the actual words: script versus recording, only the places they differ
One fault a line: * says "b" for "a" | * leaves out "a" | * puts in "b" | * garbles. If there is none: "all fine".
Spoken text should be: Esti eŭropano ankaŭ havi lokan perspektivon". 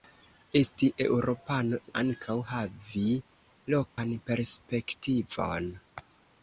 all fine